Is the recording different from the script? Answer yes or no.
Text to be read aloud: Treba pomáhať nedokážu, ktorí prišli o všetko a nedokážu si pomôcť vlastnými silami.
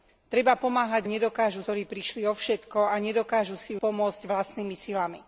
no